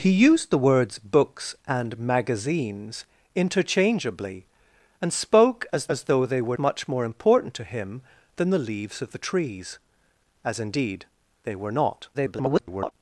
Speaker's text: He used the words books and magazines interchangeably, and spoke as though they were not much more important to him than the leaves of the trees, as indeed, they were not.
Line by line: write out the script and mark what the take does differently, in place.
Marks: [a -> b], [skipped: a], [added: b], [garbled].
He used the words books and magazines interchangeably, and spoke as [added: as] though they were [skipped: not] much more important to him than the leaves of the trees, as indeed, they were not. [garbled]